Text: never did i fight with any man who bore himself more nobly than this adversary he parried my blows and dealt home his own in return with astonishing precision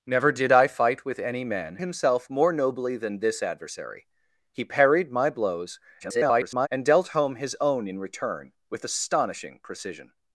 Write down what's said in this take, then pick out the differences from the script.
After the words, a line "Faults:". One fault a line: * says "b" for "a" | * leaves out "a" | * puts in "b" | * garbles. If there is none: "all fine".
never did i fight with any man himself more nobly than this adversary he parried my blows [garbled] and dealt home his own in return with astonishing precision
Faults:
* leaves out "who bore"
* garbles